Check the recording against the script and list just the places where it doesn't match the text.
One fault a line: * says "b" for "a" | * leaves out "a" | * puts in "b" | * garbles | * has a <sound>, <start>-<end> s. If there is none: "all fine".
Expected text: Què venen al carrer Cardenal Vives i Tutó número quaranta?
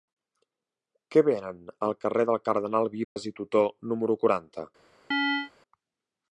* puts in "del"
* has a dropout, 3.0-3.2 s
* has a chirp, 5.1-5.5 s